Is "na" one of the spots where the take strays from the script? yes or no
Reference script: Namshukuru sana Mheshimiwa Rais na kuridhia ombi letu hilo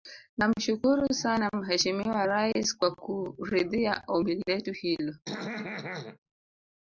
yes